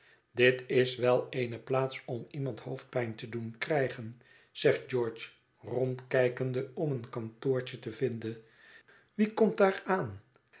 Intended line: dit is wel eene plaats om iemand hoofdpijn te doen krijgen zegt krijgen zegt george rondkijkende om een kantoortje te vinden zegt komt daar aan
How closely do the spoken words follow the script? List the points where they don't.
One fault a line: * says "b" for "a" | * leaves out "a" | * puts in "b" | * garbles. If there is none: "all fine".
* leaves out "krijgen zegt"
* says "wie" for "zegt"